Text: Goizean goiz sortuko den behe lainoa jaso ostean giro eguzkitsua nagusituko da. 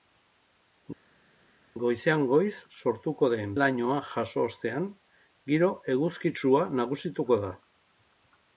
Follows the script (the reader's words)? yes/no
no